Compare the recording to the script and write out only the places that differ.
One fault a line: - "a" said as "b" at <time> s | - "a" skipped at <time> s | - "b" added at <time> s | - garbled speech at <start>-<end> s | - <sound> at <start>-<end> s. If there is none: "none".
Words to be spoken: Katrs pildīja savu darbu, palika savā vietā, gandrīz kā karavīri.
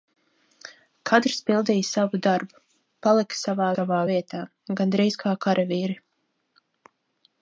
- "savā" added at 3.7 s